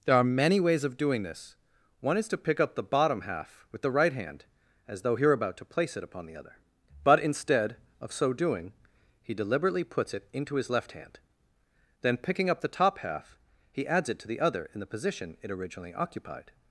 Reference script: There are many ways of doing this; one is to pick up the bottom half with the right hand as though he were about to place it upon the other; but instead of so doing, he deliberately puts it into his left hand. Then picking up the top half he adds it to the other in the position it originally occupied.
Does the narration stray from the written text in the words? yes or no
no